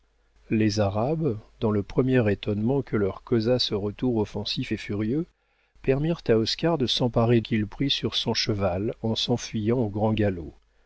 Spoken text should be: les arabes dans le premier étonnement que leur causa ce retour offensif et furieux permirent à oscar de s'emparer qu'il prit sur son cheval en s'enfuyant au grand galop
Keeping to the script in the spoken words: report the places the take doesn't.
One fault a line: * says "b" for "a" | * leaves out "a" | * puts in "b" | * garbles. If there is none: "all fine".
all fine